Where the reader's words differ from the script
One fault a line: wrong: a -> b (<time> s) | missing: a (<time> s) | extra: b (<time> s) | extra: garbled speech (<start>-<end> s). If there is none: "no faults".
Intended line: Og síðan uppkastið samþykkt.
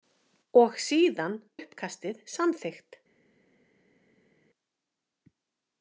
no faults